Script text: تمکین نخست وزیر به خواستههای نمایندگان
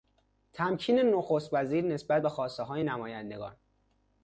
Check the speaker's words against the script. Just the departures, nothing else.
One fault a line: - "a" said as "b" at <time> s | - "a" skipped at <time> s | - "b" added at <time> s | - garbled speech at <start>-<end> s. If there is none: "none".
- "نسبت" added at 1.9 s